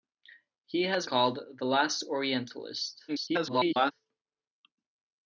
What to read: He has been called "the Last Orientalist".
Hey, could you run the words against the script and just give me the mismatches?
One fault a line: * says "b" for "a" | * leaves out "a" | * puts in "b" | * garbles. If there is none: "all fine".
* leaves out "been"
* garbles